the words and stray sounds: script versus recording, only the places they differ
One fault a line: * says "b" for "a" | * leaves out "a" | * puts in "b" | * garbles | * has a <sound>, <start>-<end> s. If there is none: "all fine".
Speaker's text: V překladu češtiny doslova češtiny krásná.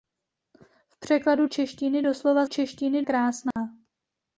* has a dropout, 3.5-3.6 s